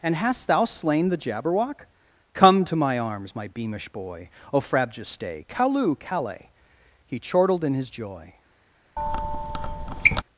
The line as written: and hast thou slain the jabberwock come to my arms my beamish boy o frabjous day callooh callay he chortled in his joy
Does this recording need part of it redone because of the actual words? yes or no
no